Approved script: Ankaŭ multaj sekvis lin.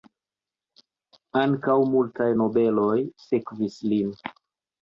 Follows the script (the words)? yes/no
no